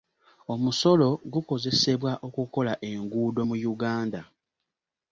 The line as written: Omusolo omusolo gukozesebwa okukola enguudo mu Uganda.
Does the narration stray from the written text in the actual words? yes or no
yes